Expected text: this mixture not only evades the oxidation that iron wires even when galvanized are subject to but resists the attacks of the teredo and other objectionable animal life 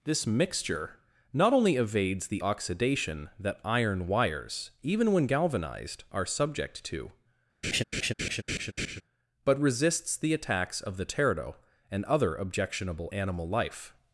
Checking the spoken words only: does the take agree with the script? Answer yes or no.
yes